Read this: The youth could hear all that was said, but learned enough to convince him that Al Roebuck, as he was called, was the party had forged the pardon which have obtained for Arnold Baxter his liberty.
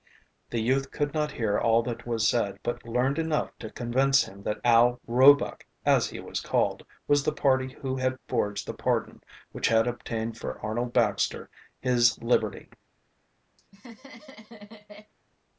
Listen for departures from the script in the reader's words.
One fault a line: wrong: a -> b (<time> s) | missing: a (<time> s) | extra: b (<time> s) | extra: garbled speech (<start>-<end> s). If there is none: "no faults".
extra: not (1.1 s)
extra: who (7.8 s)
wrong: have -> had (9.7 s)